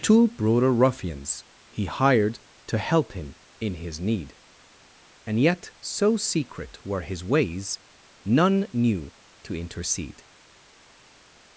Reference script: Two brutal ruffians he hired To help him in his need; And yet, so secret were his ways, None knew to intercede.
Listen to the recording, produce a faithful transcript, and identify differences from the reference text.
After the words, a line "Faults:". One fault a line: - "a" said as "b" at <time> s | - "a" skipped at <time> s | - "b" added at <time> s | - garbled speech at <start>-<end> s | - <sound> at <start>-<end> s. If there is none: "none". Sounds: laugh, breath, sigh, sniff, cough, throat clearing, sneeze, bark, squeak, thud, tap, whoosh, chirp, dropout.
Two brutal ruffians he hired To help him in his need; And yet, so secret were his ways, None knew to intercede.
Faults:
none